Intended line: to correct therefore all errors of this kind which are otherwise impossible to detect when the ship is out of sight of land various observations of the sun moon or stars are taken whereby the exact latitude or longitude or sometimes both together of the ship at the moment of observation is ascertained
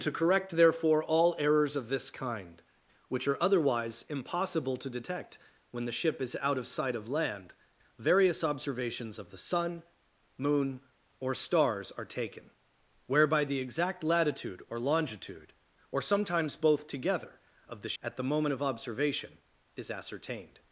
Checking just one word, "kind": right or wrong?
right